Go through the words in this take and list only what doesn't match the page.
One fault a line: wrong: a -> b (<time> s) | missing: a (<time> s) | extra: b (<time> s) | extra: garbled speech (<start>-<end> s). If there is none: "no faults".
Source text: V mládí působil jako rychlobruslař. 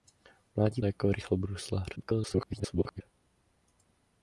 missing: působil (0.8 s)
extra: garbled speech (2.0-3.0 s)